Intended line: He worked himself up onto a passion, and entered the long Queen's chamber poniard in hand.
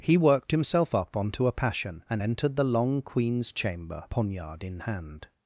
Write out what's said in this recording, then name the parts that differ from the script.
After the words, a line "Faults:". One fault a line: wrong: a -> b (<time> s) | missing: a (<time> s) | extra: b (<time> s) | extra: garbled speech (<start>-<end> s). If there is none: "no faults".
He worked himself up onto a passion, and entered the long Queen's chamber poniard in hand.
Faults:
no faults